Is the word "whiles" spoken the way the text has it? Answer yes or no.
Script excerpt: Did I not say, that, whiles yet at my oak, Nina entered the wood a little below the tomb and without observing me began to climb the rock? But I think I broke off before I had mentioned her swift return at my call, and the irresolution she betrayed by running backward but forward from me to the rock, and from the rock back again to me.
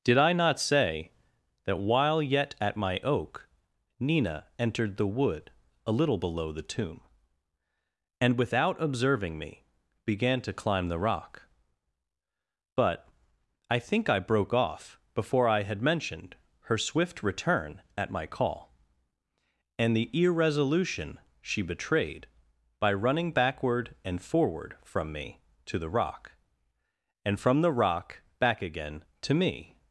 no